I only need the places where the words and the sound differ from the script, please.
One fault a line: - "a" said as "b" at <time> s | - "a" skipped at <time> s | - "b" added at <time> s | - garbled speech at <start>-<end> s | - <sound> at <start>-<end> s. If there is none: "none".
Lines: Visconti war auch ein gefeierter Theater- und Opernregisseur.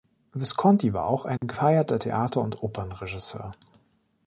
- dropout at 1.4-1.4 s